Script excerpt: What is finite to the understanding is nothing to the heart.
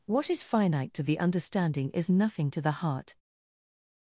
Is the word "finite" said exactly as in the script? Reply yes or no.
yes